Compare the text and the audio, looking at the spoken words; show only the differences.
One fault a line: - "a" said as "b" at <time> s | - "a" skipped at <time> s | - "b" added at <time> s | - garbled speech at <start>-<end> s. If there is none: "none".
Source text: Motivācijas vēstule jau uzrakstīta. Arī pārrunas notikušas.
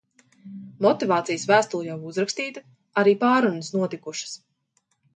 none